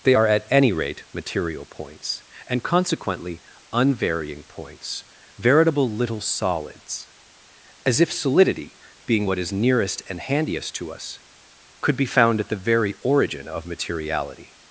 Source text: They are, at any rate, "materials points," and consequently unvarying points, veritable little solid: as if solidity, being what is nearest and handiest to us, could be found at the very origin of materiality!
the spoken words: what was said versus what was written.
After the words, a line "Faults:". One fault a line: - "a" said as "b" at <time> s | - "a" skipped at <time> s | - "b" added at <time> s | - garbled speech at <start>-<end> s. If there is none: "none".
They are, at any rate, "material points," and consequently unvarying points, veritable little solids: as if solidity, being what is nearest and handiest to us, could be found at the very origin of materiality!
Faults:
- "materials" said as "material" at 1.1 s
- "solid" said as "solids" at 6.2 s